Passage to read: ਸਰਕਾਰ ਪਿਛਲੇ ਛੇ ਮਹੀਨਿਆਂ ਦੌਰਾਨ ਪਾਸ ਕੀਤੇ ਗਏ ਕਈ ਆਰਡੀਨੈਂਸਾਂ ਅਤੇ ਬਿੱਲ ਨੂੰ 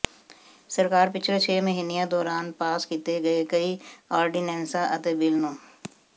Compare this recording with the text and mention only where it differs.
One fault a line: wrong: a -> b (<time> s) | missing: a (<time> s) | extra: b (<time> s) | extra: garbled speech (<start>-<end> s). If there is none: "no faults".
no faults